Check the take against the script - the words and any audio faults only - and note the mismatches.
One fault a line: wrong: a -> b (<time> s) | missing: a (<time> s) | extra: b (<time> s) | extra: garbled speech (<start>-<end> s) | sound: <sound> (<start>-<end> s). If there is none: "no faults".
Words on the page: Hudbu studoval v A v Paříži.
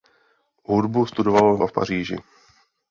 no faults